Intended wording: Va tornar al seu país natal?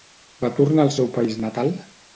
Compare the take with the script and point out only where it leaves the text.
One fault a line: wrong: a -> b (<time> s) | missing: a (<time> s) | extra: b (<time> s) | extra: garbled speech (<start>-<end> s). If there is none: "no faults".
no faults